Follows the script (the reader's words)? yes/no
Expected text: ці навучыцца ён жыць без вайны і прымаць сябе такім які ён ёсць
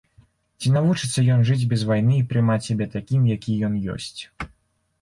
yes